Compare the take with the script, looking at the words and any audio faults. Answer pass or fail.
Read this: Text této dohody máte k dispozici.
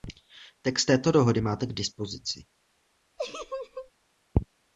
fail